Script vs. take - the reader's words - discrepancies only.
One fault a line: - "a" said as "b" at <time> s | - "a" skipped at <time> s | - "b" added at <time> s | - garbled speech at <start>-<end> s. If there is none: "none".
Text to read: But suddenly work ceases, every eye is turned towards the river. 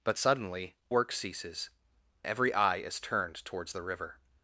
none